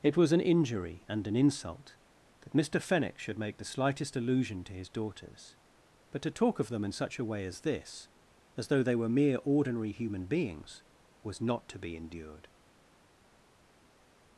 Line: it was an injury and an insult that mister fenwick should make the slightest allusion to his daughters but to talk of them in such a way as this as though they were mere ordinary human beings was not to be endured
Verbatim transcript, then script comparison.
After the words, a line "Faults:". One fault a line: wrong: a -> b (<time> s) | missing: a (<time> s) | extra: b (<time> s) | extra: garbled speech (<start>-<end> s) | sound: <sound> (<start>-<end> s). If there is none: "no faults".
it was an injury and an insult that mister fenwick should make the slightest allusion to his daughters but to talk of them in such a way as this as though they were mere ordinary human beings was not to be endured
Faults:
no faults